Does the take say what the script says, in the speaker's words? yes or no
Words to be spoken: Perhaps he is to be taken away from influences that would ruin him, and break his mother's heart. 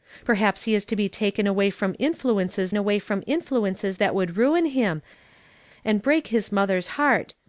no